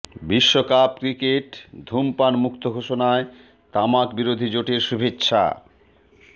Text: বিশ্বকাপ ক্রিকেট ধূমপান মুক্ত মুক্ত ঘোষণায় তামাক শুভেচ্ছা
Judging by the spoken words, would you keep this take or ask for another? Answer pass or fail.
fail